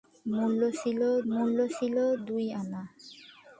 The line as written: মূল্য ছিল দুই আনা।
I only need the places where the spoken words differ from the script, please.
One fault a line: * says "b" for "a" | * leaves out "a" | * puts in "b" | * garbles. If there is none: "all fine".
* puts in "মূল্য ছিল"